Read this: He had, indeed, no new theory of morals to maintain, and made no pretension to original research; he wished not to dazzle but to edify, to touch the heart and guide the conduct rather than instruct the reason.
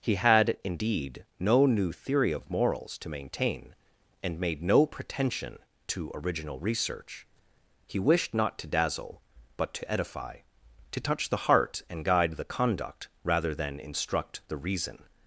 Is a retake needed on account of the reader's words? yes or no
no